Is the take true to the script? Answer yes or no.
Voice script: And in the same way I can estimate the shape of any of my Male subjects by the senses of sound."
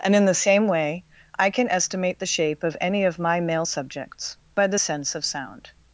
no